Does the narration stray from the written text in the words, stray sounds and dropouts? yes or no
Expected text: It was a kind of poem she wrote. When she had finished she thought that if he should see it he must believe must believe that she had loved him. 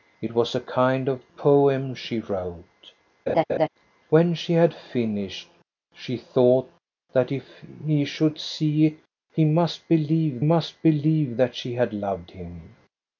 yes